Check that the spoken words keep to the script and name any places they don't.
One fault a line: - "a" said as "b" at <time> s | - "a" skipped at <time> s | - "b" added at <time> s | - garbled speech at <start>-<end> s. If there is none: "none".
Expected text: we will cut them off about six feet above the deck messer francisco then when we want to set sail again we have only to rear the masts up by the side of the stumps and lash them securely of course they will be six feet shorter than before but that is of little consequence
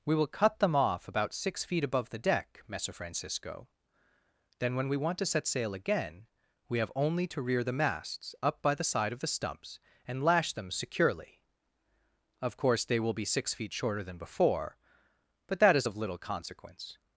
none